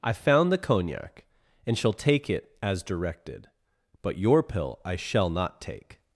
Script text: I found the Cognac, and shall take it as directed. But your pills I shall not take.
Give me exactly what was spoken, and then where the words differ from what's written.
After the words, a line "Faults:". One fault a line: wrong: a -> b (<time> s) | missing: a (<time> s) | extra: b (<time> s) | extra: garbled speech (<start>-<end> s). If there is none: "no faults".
I found the Cognac, and shall take it as directed. But your pill I shall not take.
Faults:
wrong: pills -> pill (4.4 s)